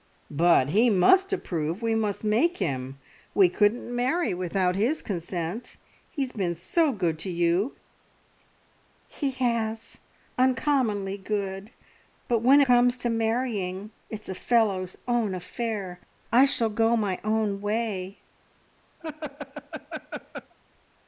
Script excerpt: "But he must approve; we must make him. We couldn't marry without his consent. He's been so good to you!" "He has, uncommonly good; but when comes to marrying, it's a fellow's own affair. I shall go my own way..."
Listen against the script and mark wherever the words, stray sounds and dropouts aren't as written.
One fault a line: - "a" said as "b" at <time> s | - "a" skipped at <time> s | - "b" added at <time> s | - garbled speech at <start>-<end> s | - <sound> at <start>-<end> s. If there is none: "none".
- laugh at 19.0-20.5 s